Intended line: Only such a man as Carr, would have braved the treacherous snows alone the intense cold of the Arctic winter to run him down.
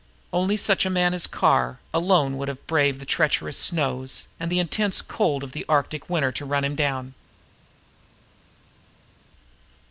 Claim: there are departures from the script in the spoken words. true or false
true